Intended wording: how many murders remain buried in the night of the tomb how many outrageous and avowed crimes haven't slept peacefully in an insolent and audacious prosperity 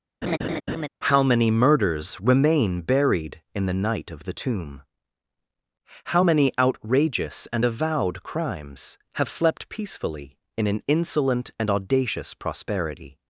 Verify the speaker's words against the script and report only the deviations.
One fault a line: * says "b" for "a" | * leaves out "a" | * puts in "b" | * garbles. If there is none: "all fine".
* says "have" for "haven't"